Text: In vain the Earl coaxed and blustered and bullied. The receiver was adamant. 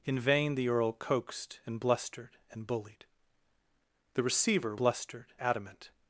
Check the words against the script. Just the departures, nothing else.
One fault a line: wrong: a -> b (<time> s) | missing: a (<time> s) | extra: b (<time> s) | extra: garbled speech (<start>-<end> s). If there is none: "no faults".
wrong: was -> blustered (4.8 s)